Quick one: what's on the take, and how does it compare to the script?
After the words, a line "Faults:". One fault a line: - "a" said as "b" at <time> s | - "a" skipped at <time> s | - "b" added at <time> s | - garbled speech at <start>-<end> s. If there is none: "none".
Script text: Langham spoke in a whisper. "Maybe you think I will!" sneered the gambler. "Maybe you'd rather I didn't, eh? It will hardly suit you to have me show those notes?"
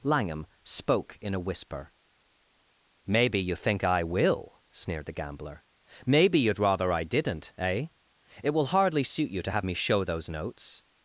Langham spoke in a whisper. "Maybe you think I will!" sneered the gambler. "Maybe you'd rather I didn't, eh? It will hardly suit you to have me show those notes?"
Faults:
none